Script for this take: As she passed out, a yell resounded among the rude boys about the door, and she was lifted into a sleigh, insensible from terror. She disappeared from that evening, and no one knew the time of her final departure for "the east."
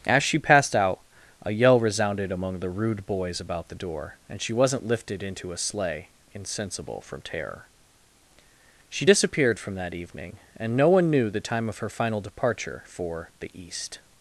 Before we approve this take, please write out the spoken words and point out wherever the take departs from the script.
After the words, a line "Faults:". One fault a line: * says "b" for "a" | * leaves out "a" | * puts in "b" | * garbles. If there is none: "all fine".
As she passed out, a yell resounded among the rude boys about the door, and she wasn't lifted into a sleigh, insensible from terror. She disappeared from that evening, and no one knew the time of her final departure for "the east."
Faults:
* says "wasn't" for "was"